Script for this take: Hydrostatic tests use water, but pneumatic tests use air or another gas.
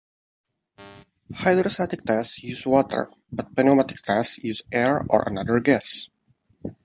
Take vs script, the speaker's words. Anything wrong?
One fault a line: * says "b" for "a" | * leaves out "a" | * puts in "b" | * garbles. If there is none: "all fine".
all fine